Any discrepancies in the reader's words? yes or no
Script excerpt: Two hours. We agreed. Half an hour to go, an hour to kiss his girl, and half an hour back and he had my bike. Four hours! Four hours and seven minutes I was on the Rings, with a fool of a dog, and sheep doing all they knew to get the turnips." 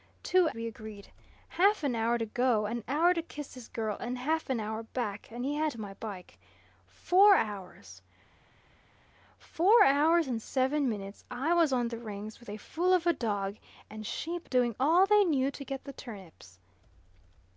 yes